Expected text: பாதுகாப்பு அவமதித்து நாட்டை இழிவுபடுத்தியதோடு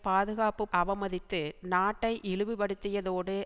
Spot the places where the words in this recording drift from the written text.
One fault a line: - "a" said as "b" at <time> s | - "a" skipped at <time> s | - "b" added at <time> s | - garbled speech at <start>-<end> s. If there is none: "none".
none